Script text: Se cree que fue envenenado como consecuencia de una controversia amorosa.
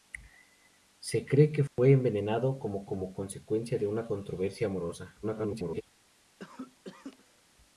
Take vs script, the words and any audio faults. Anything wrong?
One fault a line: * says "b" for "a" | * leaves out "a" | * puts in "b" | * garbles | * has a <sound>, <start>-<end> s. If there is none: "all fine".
* has a dropout, 1.7-1.8 s
* puts in "como"
* garbles
* has a cough, 6.4-7.4 s